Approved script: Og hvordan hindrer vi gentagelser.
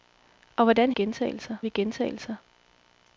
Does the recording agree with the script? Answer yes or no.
no